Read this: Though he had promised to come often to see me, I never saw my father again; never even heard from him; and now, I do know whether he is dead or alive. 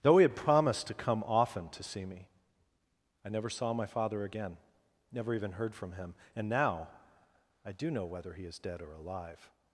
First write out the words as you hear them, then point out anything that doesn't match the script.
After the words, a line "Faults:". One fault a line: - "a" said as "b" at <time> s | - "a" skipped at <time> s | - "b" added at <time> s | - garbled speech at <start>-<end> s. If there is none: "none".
Though he had promised to come often to see me, I never saw my father again; never even heard from him; and now, I do know whether he is dead or alive.
Faults:
none